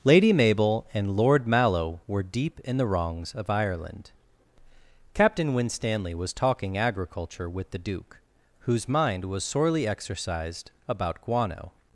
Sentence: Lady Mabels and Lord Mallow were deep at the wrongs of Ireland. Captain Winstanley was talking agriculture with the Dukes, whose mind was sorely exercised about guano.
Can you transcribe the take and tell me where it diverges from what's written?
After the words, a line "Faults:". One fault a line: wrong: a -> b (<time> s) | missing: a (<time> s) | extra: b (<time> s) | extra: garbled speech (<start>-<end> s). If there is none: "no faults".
Lady Mabel and Lord Mallow were deep in the wrongs of Ireland. Captain Winstanley was talking agriculture with the Duke, whose mind was sorely exercised about guano.
Faults:
wrong: Mabels -> Mabel (0.3 s)
wrong: at -> in (2.6 s)
wrong: Dukes -> Duke (7.8 s)